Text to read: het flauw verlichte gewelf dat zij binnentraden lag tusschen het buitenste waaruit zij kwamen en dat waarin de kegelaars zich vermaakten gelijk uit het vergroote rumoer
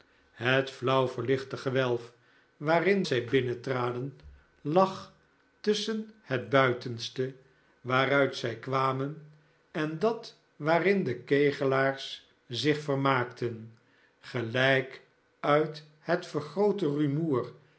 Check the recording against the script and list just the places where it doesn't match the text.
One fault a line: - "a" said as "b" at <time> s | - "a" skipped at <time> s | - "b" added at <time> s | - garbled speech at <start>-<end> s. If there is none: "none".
- "dat" said as "waarin" at 2.6 s